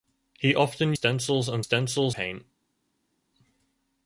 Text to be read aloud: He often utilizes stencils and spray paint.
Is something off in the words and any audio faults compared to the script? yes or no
yes